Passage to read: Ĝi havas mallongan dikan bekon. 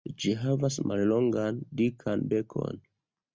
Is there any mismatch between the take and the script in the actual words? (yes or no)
no